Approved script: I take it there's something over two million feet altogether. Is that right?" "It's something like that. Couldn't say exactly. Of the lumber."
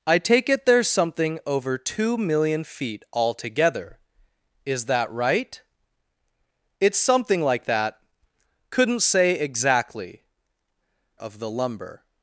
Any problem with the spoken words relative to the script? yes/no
no